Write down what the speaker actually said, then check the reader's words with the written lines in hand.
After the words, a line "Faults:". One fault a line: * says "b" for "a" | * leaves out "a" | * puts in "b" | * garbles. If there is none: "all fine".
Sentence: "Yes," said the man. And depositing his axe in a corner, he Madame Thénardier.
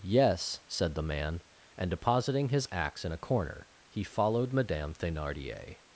"Yes," said the man. And depositing his axe in a corner, he followed Madame Thénardier.
Faults:
* puts in "followed"